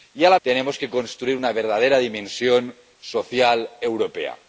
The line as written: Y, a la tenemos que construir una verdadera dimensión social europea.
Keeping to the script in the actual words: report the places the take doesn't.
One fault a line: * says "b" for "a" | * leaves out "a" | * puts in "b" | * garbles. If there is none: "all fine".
all fine